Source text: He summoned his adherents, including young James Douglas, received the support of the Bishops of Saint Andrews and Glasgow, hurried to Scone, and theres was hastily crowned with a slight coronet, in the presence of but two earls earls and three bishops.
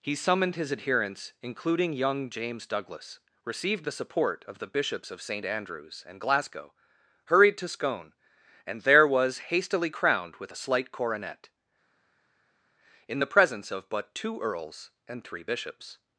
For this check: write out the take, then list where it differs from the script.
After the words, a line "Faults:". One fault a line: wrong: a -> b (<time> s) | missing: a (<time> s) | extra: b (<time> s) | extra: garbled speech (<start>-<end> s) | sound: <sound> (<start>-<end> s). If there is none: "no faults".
He summoned his adherents, including young James Douglas, received the support of the Bishops of Saint Andrews and Glasgow, hurried to Scone, and there was hastily crowned with a slight coronet, in the presence of but two earls and three bishops.
Faults:
wrong: theres -> there (8.8 s)
missing: earls (14.9 s)